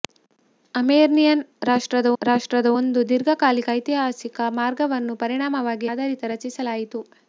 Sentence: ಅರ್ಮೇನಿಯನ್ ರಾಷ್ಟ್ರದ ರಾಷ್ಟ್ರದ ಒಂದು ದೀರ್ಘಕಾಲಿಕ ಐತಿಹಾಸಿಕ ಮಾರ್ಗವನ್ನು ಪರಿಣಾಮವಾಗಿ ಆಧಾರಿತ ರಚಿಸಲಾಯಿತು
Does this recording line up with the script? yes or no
yes